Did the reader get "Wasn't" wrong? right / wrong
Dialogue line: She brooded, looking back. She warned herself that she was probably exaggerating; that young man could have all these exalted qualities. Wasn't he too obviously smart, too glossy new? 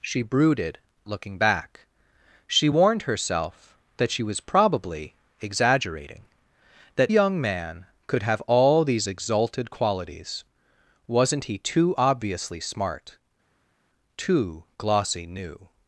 right